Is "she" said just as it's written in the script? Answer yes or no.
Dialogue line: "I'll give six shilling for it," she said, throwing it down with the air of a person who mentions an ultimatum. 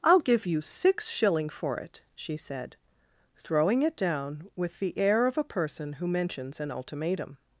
yes